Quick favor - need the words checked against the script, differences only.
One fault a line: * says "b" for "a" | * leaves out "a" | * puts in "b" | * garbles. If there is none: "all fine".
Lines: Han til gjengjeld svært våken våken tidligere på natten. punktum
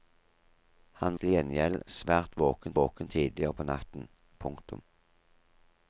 all fine